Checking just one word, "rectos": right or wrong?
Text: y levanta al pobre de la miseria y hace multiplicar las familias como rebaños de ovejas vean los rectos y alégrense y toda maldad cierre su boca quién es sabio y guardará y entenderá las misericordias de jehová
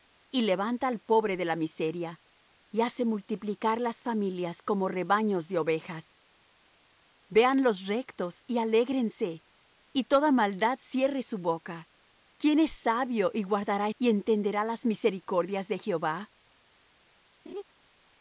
right